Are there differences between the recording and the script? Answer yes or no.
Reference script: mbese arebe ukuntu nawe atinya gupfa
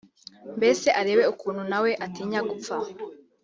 no